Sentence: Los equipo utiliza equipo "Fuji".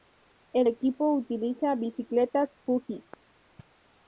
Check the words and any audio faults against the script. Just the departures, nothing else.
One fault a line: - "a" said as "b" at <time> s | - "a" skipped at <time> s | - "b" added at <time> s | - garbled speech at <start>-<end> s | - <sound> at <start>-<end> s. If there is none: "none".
- "Los" said as "El" at 0.5 s
- "equipo" said as "bicicletas" at 1.8 s